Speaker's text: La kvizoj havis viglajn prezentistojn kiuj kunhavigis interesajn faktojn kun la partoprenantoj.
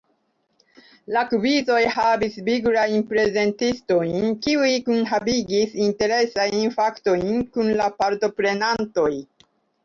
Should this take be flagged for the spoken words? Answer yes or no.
no